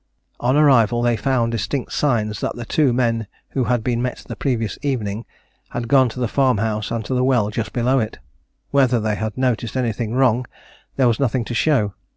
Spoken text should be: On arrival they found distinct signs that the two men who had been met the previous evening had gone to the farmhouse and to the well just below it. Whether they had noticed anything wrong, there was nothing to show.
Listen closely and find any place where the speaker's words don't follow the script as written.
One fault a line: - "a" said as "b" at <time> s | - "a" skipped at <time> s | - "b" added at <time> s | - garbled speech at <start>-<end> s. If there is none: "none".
none